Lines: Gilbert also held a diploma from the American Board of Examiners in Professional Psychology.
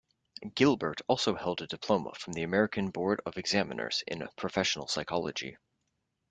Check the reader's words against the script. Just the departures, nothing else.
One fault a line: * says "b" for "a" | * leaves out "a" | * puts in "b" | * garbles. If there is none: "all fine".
all fine